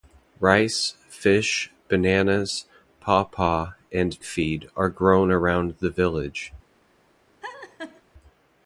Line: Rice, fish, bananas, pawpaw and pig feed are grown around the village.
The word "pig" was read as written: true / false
false